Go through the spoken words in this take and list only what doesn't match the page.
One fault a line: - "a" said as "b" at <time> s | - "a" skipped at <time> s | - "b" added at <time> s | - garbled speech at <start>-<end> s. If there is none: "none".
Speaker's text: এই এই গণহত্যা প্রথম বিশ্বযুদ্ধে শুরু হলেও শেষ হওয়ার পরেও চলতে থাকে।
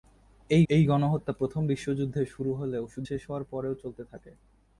none